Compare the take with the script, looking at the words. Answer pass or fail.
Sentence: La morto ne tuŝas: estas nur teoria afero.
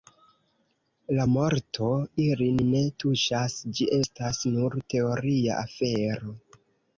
fail